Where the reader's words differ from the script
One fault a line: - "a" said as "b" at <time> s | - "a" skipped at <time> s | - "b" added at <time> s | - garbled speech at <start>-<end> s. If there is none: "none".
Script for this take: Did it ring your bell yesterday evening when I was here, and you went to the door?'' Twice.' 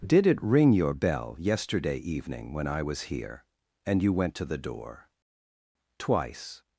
none